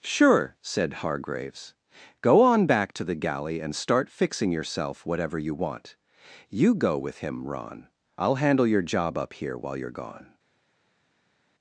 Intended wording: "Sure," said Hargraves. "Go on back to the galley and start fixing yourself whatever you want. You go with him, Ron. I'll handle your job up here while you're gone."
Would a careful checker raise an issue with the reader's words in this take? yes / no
no